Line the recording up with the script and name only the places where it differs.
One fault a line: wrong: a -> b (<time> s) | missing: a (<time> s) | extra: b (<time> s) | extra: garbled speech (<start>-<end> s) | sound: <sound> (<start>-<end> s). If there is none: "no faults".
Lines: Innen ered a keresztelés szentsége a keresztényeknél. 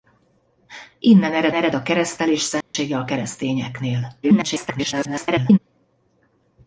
extra: ered (1.5 s)
sound: dropout (2.6-2.7 s)
extra: garbled speech (4.2-5.6 s)